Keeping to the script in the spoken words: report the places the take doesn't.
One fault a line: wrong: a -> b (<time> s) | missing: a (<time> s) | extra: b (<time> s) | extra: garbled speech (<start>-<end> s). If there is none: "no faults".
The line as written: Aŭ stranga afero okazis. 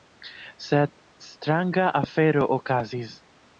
wrong: Aŭ -> Sed (0.7 s)